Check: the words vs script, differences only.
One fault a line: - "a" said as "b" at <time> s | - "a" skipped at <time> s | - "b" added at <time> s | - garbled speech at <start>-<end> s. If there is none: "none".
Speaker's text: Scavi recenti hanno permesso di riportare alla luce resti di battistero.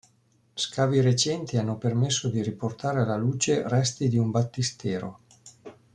- "un" added at 4.2 s